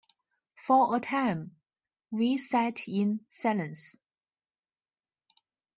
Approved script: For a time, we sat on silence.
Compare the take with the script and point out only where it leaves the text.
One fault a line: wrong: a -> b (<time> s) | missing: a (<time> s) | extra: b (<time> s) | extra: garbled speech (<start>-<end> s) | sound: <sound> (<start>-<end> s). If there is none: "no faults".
wrong: on -> in (2.9 s)